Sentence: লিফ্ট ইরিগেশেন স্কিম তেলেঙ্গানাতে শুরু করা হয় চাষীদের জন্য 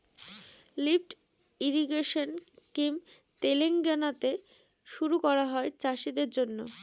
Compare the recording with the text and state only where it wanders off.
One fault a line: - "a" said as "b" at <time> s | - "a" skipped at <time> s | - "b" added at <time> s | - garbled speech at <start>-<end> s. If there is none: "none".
none